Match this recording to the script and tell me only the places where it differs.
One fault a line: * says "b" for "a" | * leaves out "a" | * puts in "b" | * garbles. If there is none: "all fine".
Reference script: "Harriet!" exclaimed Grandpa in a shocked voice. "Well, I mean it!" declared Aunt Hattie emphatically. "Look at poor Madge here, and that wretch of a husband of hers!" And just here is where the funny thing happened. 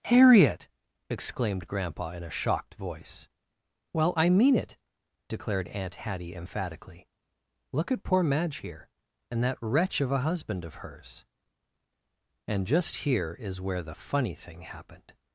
all fine